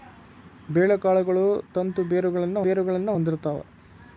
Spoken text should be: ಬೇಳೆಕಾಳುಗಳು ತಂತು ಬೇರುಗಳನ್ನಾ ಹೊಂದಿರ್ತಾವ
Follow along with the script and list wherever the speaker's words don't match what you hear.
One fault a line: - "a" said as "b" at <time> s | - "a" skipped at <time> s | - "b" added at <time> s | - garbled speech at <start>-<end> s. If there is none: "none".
- "ಬೇರುಗಳನ್ನಾ" added at 2.6 s